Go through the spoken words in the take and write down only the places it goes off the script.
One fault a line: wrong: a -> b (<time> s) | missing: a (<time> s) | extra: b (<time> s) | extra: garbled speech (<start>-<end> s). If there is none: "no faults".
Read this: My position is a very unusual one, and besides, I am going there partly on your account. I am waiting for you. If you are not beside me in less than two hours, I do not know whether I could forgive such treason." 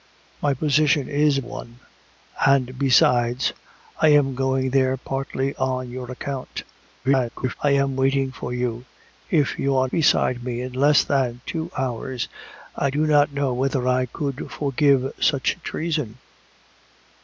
missing: very unusual (1.4 s)
extra: garbled speech (7.0-7.5 s)
missing: not (9.9 s)